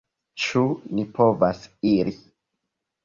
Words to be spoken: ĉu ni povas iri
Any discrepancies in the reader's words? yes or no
no